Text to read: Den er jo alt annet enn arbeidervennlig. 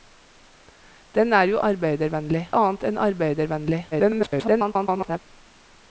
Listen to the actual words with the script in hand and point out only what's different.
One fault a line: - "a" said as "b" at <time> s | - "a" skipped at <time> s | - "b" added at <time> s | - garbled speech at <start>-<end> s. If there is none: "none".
- "alt" said as "arbeidervennlig" at 1.7 s
- garbled speech at 3.9-5.2 s